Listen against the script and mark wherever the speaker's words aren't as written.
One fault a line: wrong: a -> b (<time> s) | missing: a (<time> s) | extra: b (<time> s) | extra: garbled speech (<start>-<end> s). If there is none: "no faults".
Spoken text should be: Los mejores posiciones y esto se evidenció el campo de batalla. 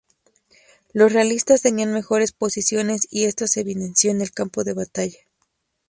extra: realistas tenían (1.1 s)
extra: en (4.1 s)